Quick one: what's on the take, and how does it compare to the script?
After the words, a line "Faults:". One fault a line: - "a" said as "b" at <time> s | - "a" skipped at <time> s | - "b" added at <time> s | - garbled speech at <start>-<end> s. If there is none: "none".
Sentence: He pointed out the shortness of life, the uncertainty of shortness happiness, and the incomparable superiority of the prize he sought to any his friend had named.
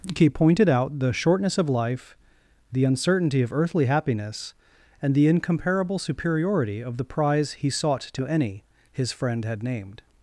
He pointed out the shortness of life, the uncertainty of earthly happiness, and the incomparable superiority of the prize he sought to any his friend had named.
Faults:
- "shortness" said as "earthly" at 3.5 s